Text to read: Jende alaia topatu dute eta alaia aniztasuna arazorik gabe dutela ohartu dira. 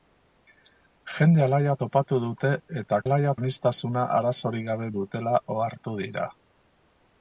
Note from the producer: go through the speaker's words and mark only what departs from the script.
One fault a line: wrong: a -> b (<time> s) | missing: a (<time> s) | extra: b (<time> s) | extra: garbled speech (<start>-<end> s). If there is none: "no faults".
no faults